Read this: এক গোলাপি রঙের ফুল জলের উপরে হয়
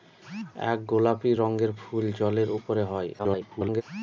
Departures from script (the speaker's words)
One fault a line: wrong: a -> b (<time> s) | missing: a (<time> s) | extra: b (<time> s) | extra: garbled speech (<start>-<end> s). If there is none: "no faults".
extra: garbled speech (3.2-3.8 s)